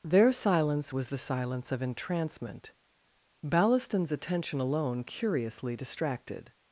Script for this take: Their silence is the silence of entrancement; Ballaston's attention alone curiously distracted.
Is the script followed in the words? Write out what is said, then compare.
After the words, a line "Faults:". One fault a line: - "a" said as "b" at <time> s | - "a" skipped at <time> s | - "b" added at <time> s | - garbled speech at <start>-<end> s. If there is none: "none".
Their silence was the silence of entrancement; Ballaston's attention alone curiously distracted.
Faults:
- "is" said as "was" at 0.9 s